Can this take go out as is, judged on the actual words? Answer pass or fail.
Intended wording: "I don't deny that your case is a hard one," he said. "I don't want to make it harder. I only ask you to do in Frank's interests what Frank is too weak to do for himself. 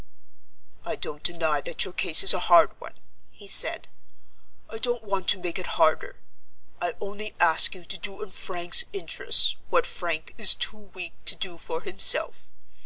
pass